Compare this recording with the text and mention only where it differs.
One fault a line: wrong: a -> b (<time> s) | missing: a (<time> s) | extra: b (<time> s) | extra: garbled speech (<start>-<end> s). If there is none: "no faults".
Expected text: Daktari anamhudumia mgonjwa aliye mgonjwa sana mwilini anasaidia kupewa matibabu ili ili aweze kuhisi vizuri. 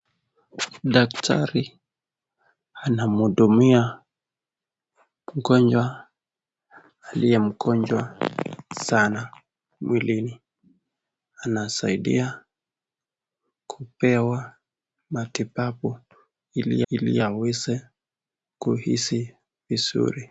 no faults